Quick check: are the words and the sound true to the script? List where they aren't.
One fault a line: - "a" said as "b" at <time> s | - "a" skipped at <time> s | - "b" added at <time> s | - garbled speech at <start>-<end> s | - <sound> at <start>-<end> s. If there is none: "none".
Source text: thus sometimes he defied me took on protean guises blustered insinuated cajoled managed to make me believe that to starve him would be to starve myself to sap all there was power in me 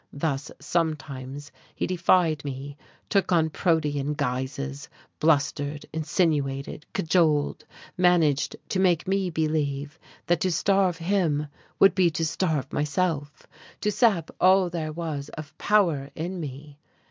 - "of" added at 15.3 s